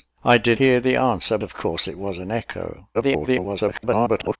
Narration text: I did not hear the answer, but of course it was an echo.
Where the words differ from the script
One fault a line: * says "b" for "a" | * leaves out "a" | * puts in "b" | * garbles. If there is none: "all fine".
* leaves out "not"
* leaves out "but"
* garbles